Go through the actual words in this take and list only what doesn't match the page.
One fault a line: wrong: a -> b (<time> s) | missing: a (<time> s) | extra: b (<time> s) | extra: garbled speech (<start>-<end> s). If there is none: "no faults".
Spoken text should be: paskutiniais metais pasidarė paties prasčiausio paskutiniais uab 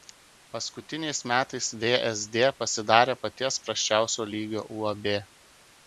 extra: vsd (1.8 s)
wrong: paskutiniais -> lygio (4.3 s)